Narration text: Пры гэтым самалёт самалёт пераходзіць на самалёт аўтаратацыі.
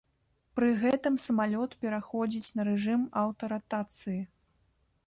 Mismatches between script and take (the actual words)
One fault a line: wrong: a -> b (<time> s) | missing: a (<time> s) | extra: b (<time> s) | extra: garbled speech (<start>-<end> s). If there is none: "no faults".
missing: самалёт (1.8 s)
wrong: самалёт -> рэжым (2.7 s)